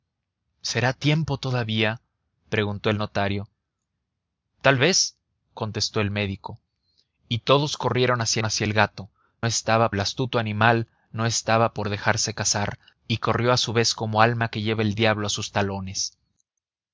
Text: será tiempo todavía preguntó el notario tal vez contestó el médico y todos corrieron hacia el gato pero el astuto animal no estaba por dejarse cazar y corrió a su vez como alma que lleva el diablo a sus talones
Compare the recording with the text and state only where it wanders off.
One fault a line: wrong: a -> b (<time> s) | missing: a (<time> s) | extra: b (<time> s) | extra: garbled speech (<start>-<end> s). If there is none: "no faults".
extra: hacia (8.4 s)
wrong: pero -> estaba (9.5 s)